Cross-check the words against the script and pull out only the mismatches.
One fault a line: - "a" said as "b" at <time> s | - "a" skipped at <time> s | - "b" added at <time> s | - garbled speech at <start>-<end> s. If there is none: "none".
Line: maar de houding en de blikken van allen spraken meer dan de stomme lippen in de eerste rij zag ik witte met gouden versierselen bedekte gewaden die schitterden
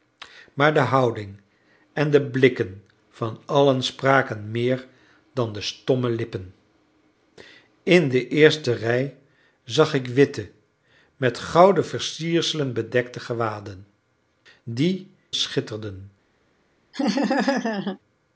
none